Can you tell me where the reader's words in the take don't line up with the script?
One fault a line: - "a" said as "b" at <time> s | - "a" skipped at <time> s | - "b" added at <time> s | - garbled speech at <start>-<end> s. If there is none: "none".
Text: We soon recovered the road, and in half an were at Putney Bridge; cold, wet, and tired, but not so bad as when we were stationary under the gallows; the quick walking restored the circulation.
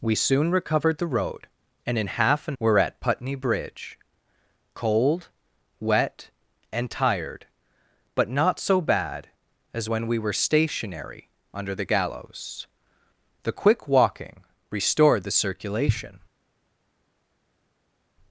none